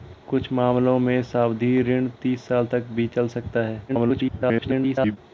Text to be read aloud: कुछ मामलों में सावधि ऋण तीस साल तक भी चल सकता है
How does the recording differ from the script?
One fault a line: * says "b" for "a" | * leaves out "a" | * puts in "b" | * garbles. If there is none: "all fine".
* garbles